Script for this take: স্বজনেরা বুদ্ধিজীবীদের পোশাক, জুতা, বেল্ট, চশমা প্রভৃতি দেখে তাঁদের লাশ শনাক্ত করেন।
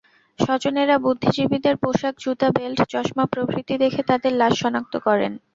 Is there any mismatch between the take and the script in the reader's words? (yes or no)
no